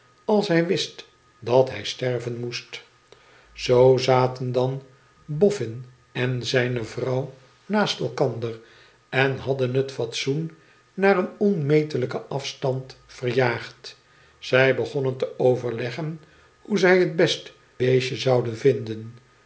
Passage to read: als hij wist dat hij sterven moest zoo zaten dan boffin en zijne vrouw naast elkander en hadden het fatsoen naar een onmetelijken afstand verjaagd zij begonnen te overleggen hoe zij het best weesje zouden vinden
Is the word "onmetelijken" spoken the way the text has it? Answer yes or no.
yes